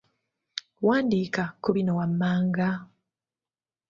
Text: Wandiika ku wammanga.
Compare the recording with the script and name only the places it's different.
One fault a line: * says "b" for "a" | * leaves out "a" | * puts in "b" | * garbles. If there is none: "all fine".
* puts in "bino"